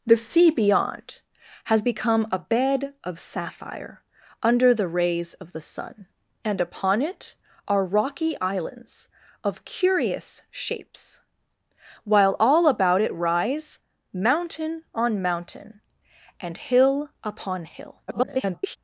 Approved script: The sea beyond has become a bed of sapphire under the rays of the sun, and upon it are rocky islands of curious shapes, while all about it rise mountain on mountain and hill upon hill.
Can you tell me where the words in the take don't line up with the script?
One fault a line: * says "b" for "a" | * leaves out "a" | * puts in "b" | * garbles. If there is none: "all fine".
* garbles